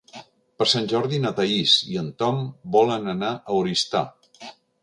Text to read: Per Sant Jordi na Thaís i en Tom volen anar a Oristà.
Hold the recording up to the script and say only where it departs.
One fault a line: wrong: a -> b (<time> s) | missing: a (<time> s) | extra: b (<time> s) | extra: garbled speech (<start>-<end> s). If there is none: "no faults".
no faults